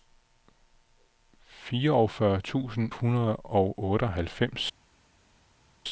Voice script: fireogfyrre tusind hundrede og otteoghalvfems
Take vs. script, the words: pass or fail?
pass